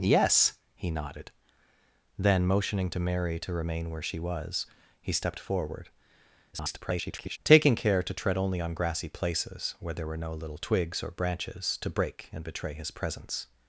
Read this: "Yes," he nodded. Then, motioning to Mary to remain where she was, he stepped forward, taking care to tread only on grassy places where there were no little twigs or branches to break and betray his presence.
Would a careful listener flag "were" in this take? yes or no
no